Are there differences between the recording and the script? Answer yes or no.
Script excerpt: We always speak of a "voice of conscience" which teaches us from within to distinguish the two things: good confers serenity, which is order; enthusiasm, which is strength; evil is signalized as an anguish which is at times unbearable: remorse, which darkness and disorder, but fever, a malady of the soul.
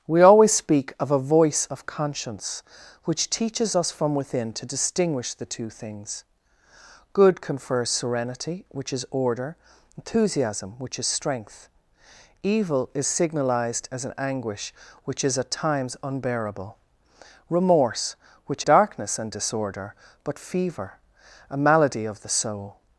no